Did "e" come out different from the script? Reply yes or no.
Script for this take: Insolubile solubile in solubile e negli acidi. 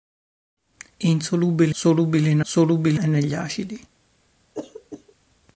no